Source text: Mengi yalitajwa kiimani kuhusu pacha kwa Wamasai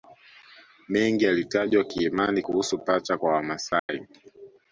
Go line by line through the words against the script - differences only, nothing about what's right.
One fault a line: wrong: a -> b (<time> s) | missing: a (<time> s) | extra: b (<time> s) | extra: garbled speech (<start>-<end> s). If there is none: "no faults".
no faults